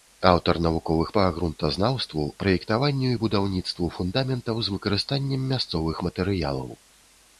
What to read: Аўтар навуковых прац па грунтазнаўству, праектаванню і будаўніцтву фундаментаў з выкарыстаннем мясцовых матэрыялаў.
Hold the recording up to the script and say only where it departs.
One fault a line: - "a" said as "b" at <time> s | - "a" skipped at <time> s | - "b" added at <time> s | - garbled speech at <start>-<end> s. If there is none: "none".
- "прац" skipped at 1.1 s